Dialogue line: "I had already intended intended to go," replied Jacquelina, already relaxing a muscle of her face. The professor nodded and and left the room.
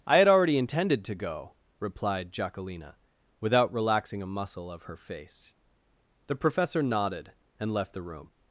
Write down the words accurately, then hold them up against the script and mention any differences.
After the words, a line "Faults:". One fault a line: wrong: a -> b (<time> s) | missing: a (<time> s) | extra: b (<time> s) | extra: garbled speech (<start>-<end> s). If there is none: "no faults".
"I had already intended to go," replied Jacquelina, without relaxing a muscle of her face. The professor nodded and left the room.
Faults:
missing: intended (1.1 s)
wrong: already -> without (3.4 s)
missing: and (7.7 s)